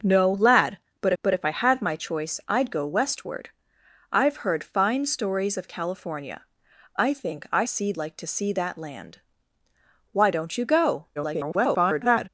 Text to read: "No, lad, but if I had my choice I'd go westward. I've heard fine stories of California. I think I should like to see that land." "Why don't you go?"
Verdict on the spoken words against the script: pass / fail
fail